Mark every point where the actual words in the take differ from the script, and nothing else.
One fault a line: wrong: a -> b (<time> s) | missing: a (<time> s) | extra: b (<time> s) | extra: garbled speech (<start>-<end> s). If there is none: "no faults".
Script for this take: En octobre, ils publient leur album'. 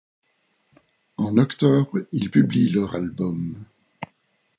no faults